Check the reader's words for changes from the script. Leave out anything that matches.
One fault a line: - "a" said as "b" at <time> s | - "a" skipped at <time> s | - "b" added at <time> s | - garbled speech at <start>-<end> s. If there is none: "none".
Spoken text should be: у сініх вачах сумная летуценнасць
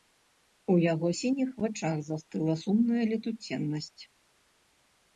- "яго" added at 0.9 s
- "застыла" added at 2.1 s